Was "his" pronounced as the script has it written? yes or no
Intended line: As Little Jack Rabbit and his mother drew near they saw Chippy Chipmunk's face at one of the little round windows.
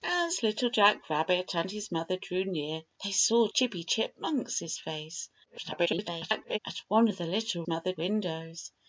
yes